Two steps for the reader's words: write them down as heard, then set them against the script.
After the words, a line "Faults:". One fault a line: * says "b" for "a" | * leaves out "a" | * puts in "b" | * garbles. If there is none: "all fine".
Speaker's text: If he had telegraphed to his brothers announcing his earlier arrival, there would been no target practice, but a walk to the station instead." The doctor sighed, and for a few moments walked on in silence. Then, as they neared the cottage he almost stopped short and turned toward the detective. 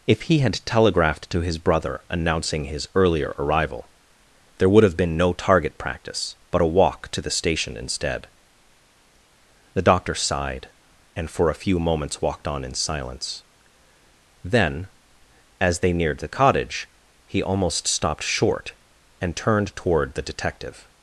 If he had telegraphed to his brother announcing his earlier arrival, there would have been no target practice, but a walk to the station instead." The doctor sighed, and for a few moments walked on in silence. Then, as they neared the cottage he almost stopped short and turned toward the detective.
Faults:
* says "brother" for "brothers"
* puts in "have"